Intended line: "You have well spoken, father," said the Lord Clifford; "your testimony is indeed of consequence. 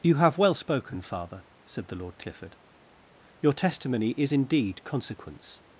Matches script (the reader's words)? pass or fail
fail